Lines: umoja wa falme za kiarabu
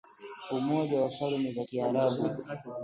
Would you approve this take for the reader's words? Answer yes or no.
yes